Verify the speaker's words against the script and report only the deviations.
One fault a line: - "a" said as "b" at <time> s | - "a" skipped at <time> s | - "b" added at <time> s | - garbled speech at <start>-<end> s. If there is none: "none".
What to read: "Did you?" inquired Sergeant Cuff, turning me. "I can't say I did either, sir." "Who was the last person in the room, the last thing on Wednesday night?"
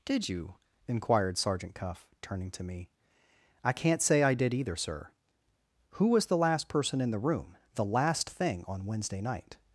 - "to" added at 2.5 s